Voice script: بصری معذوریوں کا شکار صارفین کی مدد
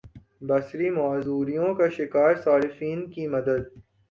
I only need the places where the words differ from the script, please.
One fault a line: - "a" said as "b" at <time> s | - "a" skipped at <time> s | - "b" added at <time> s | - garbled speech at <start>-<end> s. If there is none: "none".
none